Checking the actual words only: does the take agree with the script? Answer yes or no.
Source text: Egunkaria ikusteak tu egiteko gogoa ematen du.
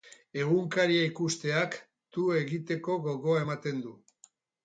yes